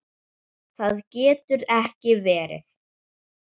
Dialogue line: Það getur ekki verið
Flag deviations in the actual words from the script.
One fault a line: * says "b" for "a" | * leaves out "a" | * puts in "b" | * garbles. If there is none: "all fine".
all fine